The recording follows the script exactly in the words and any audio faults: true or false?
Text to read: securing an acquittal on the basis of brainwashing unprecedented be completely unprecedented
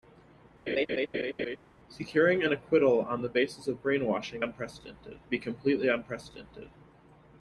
false